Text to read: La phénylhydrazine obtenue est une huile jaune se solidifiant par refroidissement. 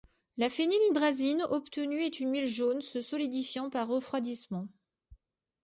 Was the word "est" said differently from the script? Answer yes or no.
no